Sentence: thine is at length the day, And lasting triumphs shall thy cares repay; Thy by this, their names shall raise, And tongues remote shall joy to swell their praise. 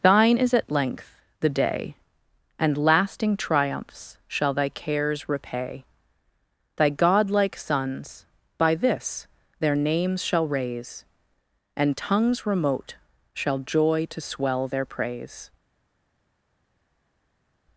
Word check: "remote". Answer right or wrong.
right